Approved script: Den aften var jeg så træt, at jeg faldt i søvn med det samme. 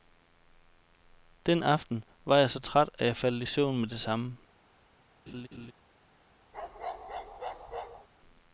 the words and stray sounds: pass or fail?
fail